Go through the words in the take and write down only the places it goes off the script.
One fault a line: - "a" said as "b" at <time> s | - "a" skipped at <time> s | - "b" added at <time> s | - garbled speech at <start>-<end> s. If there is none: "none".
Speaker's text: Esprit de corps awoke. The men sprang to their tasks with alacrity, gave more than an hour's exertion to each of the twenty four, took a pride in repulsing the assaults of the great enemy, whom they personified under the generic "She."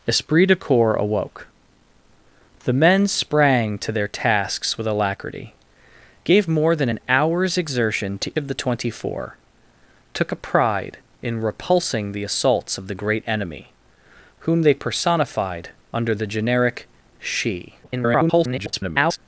- "each" skipped at 8.3 s
- garbled speech at 17.8-19.2 s